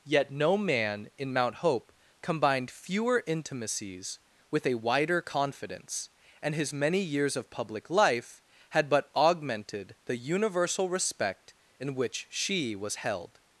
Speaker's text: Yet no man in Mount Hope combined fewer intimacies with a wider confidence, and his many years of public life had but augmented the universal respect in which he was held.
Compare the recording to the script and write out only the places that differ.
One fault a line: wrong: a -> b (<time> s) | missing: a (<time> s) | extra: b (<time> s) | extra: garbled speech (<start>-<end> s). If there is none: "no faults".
wrong: he -> she (12.3 s)